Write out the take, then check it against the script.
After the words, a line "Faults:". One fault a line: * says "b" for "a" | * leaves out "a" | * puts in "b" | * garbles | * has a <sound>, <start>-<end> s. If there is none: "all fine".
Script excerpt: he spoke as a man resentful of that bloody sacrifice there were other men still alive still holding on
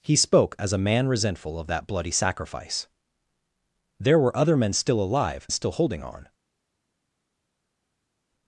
he spoke as a man resentful of that bloody sacrifice there were other men still alive still holding on
Faults:
all fine